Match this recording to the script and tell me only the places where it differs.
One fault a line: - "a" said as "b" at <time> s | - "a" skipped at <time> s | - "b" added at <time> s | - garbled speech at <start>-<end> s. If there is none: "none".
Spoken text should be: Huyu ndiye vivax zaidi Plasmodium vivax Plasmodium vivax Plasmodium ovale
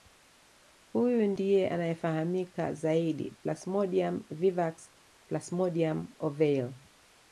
- "vivax" said as "anayefahamika" at 1.7 s
- "vivax Plasmodium" skipped at 6.1 s